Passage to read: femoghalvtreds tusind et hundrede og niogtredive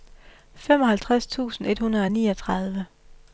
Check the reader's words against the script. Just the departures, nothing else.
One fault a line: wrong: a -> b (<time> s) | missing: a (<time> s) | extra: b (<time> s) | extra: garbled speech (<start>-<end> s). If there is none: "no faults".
no faults